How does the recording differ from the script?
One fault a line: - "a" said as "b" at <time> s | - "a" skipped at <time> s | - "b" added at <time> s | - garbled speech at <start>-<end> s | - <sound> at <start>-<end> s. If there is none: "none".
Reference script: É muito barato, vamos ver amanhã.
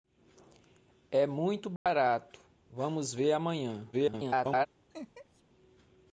- dropout at 1.8-1.9 s
- garbled speech at 3.9-4.7 s
- laugh at 4.9-5.4 s